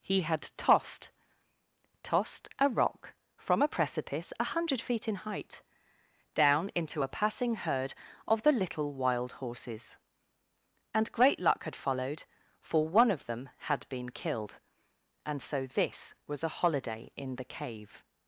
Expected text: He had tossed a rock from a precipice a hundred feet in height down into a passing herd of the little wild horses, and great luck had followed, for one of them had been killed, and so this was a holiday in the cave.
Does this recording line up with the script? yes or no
no